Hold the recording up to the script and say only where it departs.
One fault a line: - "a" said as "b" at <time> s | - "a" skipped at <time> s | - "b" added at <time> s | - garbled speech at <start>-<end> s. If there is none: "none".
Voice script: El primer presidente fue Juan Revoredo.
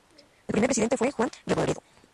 none